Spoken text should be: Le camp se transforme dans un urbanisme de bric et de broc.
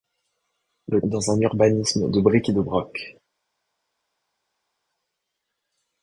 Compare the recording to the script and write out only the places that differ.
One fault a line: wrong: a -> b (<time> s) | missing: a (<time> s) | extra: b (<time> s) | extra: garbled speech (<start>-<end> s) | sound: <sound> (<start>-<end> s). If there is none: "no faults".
missing: camp se transforme (1.0 s)